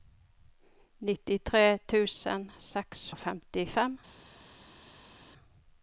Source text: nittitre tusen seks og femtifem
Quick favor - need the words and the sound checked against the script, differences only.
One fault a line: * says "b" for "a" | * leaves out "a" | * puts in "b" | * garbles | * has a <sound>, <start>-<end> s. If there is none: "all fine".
all fine